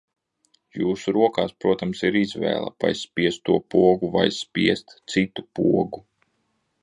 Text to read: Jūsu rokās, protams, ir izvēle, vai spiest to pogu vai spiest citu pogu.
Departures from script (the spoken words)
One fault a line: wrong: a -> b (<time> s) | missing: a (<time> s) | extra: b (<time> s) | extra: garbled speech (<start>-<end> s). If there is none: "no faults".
no faults